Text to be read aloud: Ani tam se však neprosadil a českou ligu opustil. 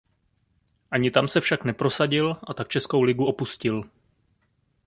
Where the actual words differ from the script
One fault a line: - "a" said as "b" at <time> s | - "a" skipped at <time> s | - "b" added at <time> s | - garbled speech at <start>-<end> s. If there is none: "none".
- "tak" added at 2.5 s